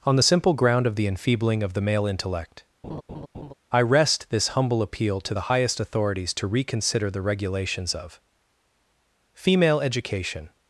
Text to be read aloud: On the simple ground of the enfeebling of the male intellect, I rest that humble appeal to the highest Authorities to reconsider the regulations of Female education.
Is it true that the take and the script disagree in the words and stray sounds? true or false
true